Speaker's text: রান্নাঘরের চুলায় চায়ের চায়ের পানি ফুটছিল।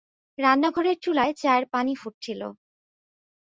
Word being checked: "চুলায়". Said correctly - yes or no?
yes